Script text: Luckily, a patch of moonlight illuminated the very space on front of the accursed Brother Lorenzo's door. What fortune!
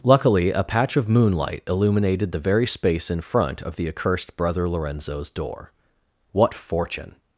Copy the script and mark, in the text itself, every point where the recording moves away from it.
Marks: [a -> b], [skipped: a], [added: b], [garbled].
Luckily, a patch of moonlight illuminated the very space [on -> in] front of the accursed Brother Lorenzo's door. What fortune!